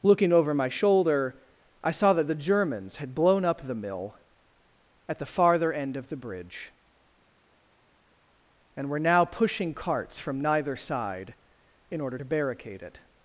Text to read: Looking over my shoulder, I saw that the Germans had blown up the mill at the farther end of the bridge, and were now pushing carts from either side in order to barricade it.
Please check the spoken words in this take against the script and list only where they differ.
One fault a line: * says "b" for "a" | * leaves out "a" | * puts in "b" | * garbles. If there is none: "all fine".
* says "neither" for "either"